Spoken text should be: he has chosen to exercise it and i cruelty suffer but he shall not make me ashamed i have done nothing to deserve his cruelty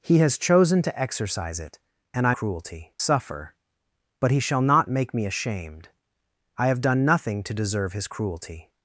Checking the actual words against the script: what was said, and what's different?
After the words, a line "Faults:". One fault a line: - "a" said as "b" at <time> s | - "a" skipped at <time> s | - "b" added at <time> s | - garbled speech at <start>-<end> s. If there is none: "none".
he has chosen to exercise it and i cruelty suffer but he shall not make me ashamed i have done nothing to deserve his cruelty
Faults:
none